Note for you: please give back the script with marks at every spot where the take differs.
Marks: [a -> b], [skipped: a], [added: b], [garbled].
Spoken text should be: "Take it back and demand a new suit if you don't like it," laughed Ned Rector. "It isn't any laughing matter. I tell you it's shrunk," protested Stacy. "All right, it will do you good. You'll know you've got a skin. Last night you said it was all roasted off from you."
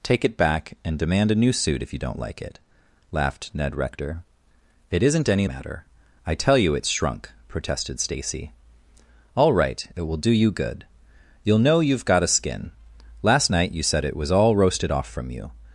"Take it back and demand a new suit if you don't like it," laughed Ned Rector. "It isn't any [skipped: laughing] matter. I tell you it's shrunk," protested Stacy. "All right, it will do you good. You'll know you've got a skin. Last night you said it was all roasted off from you."